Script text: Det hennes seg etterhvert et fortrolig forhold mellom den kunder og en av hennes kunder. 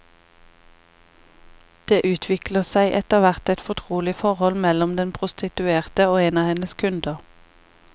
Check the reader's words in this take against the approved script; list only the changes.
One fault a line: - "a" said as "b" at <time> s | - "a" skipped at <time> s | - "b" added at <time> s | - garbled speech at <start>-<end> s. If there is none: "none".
- "hennes" said as "utvikler" at 2.1 s
- "kunder" said as "prostituerte" at 5.2 s